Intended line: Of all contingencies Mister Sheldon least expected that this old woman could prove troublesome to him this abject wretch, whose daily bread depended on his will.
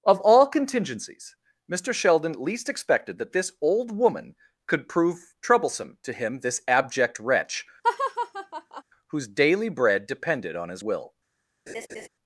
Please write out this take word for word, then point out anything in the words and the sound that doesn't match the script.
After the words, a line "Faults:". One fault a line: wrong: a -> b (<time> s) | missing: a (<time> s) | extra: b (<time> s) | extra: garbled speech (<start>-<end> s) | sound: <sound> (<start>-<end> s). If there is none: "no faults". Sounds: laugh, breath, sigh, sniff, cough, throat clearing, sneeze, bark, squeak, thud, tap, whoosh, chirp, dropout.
Of all contingencies Mister Sheldon least expected that this old woman could prove troublesome to him this abject wretch, whose daily bread depended on his will.
Faults:
sound: laugh (7.8-8.8 s)
sound: laugh (11.7-12.1 s)